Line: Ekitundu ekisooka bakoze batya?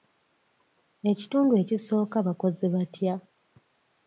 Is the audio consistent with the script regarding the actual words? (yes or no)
yes